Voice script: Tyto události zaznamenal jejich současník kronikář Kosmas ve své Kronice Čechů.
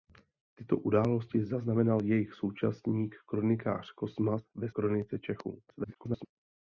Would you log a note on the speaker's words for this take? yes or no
yes